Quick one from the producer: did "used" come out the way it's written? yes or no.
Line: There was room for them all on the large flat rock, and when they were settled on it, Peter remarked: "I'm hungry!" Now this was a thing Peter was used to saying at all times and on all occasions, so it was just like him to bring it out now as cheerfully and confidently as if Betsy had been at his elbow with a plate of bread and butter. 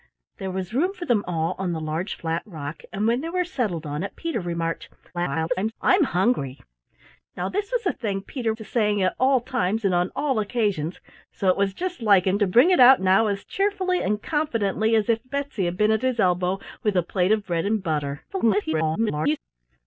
no